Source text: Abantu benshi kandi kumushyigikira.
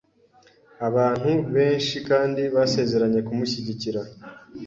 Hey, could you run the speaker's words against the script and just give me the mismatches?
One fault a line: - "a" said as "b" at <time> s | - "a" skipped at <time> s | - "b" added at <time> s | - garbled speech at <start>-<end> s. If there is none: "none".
- "basezeranye" added at 2.5 s